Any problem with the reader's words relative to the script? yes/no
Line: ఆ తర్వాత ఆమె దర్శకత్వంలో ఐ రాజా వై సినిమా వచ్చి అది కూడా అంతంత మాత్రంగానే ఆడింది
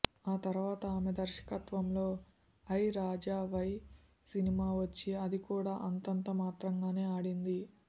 no